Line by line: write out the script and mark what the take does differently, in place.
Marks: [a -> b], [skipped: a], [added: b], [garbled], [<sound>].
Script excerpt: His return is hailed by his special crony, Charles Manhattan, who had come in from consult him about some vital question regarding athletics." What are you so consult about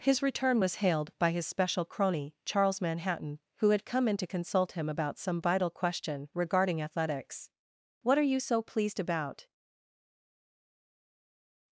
His return [is -> was] hailed by his special crony, Charles Manhattan, who had come in [from -> to] consult him about some vital question regarding athletics." What are you so [consult -> pleased] about